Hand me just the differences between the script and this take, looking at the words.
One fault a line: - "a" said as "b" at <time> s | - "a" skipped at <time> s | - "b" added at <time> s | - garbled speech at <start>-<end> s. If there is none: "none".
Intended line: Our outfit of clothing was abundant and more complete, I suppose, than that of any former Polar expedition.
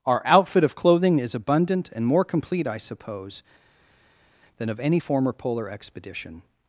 - "was" said as "is" at 1.2 s
- "that" skipped at 4.7 s